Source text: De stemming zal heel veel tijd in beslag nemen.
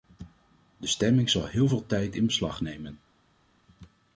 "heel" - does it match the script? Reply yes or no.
yes